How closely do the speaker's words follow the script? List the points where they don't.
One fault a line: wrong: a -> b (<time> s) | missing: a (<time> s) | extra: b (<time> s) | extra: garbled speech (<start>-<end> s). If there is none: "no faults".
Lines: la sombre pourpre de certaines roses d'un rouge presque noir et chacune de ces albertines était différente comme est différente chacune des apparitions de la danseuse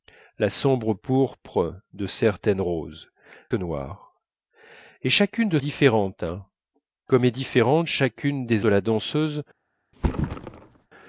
missing: d'un rouge presque (3.1 s)
missing: ces albertines était (5.6 s)
missing: apparitions (8.6 s)